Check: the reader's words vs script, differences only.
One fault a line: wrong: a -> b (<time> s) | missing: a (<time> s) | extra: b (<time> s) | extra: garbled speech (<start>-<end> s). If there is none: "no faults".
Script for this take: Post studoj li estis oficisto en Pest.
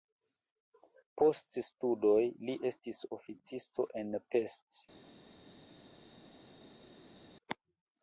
no faults